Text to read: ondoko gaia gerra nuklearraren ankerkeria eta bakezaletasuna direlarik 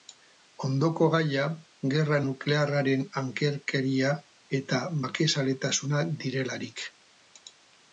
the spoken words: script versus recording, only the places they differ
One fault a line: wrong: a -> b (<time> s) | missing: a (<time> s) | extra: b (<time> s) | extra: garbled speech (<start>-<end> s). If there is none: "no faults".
no faults